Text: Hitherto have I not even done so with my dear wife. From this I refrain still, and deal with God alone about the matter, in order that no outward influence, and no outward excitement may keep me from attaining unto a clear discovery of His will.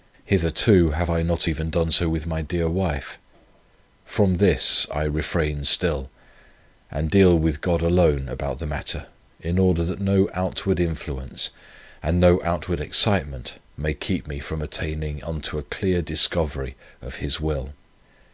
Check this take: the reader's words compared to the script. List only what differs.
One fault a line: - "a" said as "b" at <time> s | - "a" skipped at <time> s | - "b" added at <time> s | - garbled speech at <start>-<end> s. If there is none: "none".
none